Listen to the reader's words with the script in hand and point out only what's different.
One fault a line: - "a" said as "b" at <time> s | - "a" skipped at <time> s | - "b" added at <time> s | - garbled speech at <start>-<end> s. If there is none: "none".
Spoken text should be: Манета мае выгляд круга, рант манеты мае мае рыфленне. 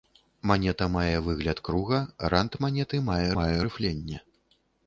none